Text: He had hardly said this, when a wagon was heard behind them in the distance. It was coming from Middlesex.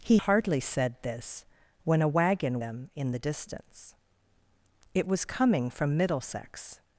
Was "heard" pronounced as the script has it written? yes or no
no